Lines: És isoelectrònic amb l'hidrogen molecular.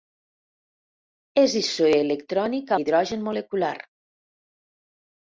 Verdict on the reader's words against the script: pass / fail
fail